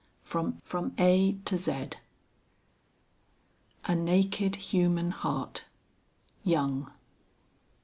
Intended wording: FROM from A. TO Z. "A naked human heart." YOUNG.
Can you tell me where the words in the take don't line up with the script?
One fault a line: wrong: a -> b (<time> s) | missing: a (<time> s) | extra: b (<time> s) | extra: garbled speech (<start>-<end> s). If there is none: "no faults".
no faults